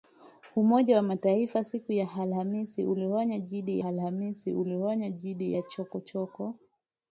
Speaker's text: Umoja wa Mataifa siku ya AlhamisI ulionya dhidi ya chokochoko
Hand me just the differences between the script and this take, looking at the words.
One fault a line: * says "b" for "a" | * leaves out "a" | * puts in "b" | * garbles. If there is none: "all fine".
* puts in "AlhamisI ulionya dhidi"